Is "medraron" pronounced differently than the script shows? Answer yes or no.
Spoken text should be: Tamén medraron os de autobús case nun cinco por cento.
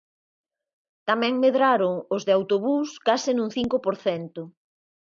no